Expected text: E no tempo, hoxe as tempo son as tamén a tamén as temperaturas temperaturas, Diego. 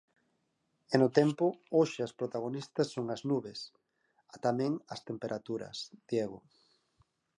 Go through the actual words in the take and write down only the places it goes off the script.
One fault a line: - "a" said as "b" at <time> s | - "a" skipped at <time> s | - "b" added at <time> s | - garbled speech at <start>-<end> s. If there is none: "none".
- "tempo" said as "protagonistas" at 2.2 s
- "tamén" said as "nubes" at 3.3 s
- "temperaturas" skipped at 5.8 s